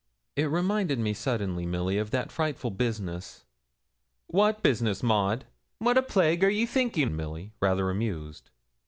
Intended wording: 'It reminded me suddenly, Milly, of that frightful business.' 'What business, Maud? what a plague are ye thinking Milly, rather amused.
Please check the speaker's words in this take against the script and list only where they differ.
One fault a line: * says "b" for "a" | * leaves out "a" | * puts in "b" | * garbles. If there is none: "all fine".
all fine